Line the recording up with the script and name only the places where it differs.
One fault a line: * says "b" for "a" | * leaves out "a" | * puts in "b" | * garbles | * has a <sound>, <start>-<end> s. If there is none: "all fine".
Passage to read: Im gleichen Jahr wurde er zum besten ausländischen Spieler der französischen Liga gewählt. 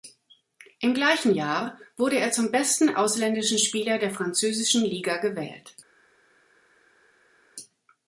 all fine